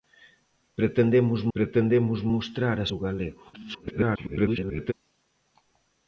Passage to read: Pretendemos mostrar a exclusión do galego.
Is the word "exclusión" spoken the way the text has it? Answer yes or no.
no